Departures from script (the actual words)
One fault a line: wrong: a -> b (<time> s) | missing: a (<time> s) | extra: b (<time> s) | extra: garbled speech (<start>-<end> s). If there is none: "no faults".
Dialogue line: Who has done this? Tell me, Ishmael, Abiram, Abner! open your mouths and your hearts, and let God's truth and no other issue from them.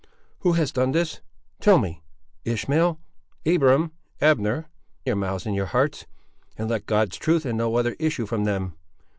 missing: open (4.7 s)